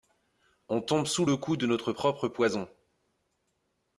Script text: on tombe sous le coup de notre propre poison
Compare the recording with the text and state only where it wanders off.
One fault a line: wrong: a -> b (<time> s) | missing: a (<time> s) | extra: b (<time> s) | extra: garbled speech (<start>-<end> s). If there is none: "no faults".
no faults